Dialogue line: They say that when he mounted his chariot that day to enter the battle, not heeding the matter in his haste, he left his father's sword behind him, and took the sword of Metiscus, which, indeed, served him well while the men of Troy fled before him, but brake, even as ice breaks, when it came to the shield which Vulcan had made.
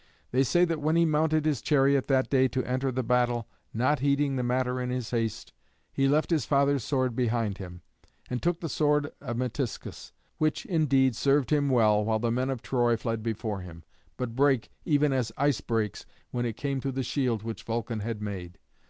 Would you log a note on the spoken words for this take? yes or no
no